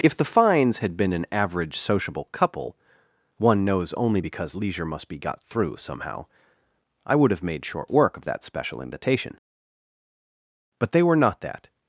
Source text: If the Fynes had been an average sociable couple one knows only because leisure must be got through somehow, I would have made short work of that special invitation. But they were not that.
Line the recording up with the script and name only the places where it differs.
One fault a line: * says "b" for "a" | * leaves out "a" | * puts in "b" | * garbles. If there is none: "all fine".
all fine